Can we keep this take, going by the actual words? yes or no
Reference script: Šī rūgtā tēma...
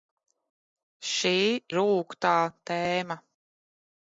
yes